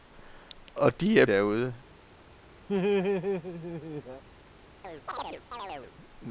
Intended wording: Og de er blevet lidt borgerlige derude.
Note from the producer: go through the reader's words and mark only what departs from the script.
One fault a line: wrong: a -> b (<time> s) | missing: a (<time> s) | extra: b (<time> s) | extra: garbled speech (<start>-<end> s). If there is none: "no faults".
missing: blevet lidt borgerlige (1.2 s)